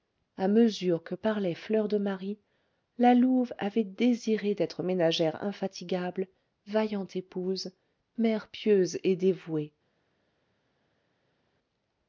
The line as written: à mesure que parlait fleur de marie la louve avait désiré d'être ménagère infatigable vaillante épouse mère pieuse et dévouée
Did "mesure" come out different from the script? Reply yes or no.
no